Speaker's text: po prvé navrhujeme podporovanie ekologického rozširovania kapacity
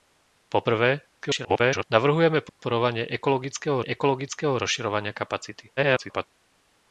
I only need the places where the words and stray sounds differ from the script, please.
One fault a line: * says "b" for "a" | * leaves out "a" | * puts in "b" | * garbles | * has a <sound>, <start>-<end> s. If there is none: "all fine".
* garbles
* has a dropout, 2.5-2.6 s
* puts in "ekologického"
* garbles